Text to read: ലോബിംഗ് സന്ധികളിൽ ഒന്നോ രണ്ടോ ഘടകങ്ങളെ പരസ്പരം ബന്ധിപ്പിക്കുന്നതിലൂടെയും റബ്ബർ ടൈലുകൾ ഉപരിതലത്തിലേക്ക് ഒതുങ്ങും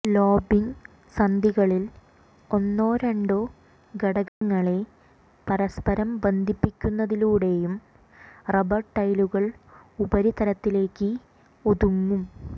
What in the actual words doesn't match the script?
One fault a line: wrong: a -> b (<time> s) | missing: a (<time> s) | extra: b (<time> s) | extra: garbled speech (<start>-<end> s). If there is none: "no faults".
no faults